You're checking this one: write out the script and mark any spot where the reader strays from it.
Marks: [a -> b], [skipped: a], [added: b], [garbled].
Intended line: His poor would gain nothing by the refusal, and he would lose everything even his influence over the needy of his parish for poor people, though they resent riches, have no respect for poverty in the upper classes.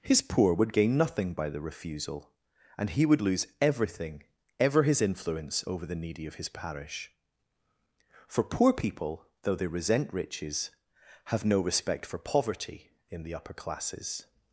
His poor would gain nothing by the refusal, and he would lose everything [even -> ever] his influence over the needy of his parish for poor people, though they resent riches, have no respect for poverty in the upper classes.